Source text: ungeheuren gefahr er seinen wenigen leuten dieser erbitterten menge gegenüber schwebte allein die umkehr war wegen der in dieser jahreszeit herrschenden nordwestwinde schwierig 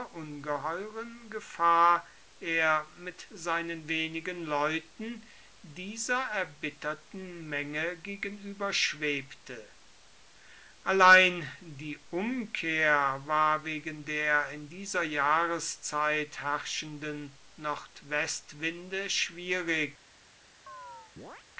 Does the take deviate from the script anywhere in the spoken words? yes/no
yes